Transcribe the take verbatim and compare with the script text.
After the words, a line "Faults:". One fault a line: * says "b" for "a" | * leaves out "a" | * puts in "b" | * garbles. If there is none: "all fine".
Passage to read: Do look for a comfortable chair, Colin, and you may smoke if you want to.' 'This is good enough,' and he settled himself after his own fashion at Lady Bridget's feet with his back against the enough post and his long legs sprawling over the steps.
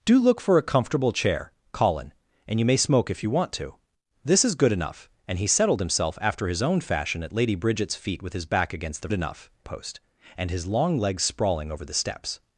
Do look for a comfortable chair, Colin, and you may smoke if you want to.' 'This is good enough,' and he settled himself after his own fashion at Lady Bridget's feet with his back against the enough post and his long legs sprawling over the steps.
Faults:
all fine